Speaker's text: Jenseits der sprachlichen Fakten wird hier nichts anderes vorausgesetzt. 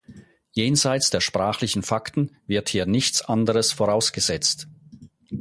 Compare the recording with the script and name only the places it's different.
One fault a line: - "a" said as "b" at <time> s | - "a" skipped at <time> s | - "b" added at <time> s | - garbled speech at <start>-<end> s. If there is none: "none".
none